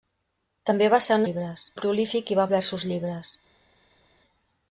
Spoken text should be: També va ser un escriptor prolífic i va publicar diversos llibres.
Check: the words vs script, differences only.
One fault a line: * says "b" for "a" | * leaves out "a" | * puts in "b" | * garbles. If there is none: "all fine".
* says "llibres" for "escriptor"
* leaves out "publicar"